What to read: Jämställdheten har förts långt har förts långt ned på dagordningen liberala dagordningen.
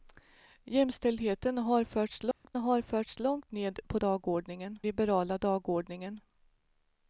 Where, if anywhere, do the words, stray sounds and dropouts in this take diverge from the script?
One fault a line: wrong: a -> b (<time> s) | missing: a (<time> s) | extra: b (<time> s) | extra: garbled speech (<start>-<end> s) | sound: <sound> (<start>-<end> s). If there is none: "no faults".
sound: dropout (2.3-2.4 s)